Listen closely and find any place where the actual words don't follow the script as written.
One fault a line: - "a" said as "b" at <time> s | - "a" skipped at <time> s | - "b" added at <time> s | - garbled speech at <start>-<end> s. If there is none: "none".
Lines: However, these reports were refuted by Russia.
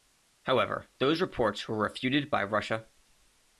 - "these" said as "those" at 1.0 s